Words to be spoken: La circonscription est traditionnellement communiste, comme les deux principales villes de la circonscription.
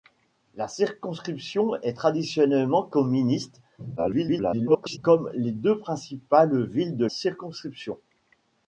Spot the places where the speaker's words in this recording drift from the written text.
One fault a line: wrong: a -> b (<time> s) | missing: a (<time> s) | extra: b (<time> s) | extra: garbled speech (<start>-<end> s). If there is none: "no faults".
extra: garbled speech (4.0-5.0 s)
missing: la (7.1 s)